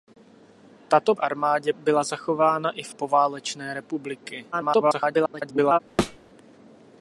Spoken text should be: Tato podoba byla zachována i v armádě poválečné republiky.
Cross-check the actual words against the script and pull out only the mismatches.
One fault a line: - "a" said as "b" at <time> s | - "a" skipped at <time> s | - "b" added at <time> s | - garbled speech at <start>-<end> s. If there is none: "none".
- "podoba" said as "armádě" at 1.2 s
- "armádě" skipped at 3.0 s
- garbled speech at 4.5-5.8 s